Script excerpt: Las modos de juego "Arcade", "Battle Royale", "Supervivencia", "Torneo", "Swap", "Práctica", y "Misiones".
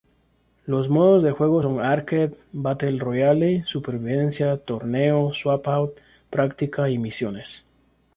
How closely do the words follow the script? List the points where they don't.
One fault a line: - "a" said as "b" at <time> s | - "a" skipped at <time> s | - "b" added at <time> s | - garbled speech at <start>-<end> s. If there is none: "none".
- "Las" said as "Los" at 0.7 s
- "son" added at 1.6 s
- "Out" added at 5.7 s